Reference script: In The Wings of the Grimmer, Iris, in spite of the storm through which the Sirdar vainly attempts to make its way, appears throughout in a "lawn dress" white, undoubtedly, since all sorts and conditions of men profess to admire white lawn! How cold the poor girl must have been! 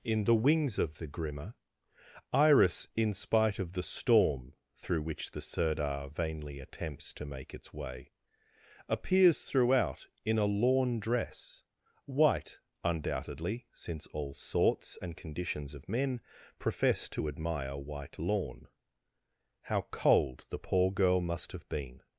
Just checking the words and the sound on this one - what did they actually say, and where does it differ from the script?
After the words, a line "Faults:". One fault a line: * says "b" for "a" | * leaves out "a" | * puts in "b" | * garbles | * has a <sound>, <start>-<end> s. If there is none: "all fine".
In The Wings of the Grimmer, Iris, in spite of the storm through which the Sirdar vainly attempts to make its way, appears throughout in a "lawn dress" white, undoubtedly, since all sorts and conditions of men profess to admire white lawn! How cold the poor girl must have been!
Faults:
all fine